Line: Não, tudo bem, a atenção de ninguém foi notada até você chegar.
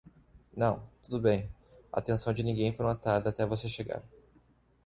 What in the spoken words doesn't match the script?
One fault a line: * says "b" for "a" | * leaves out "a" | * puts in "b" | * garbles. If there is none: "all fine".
all fine